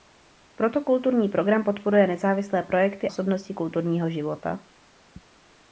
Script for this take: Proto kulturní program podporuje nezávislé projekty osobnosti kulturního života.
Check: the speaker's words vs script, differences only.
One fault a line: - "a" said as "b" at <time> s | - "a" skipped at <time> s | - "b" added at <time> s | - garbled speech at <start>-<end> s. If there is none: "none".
none